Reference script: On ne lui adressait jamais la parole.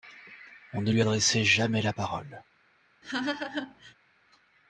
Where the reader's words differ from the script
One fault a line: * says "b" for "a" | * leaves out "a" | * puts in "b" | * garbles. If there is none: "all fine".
all fine